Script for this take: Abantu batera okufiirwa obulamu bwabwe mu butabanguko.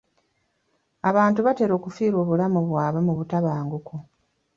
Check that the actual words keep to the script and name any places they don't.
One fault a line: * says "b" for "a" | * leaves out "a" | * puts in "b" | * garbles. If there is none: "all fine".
all fine